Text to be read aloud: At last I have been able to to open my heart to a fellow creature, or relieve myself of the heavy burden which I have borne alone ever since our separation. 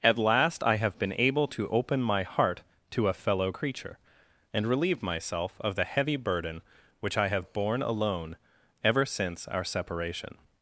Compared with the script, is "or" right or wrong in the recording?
wrong